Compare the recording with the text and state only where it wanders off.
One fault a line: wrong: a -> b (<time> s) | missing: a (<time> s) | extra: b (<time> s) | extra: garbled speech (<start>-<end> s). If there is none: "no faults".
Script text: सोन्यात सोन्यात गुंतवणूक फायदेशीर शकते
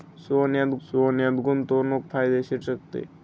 no faults